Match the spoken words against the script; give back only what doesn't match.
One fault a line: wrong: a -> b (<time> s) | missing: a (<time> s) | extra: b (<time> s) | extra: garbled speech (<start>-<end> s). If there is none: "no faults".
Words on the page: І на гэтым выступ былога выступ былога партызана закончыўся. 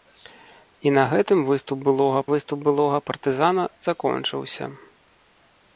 no faults